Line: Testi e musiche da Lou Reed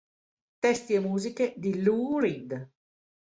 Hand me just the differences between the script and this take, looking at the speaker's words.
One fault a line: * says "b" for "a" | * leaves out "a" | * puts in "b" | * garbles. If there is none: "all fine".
* says "di" for "da"